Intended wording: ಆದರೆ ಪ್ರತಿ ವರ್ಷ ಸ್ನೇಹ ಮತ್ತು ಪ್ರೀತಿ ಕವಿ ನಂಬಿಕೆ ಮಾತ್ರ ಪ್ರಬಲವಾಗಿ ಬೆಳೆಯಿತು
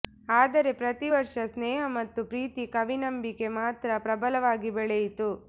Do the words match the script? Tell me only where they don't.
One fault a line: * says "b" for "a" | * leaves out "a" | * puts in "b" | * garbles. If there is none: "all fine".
all fine